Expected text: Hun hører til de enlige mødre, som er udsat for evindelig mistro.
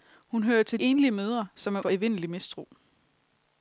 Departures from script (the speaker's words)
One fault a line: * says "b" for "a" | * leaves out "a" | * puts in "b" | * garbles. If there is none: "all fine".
* leaves out "de"
* leaves out "udsat"